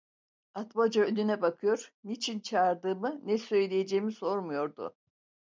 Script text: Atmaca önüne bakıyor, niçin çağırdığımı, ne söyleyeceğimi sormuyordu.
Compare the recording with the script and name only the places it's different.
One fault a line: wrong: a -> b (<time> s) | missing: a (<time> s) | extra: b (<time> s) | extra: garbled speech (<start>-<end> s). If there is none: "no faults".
no faults